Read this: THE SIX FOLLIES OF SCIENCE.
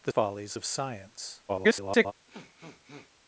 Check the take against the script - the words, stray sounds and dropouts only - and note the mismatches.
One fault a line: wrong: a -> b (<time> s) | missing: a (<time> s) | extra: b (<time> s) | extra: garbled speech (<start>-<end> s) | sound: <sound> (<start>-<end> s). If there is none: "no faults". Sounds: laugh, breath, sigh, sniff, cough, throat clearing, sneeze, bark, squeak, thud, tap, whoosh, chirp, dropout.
missing: SIX (0.1 s)
extra: garbled speech (1.5-2.1 s)
sound: sniff (2.3-3.1 s)